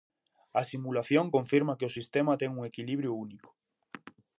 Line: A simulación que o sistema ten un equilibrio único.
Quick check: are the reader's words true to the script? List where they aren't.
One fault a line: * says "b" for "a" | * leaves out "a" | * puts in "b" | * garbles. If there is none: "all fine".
* puts in "confirma"